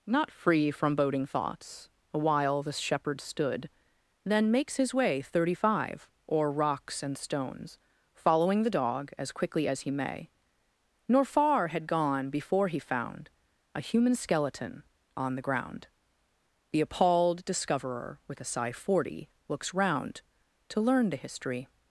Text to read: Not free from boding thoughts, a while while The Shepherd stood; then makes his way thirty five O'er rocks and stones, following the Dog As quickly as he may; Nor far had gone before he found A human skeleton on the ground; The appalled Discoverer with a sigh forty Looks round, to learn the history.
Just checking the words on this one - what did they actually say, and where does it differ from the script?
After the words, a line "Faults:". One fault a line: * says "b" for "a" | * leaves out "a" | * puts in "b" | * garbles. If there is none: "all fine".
Not free from boding thoughts, a while The Shepherd stood; then makes his way thirty five O'er rocks and stones, following the Dog As quickly as he may; Nor far had gone before he found A human skeleton on the ground; The appalled Discoverer with a sigh forty Looks round, to learn the history.
Faults:
* leaves out "while"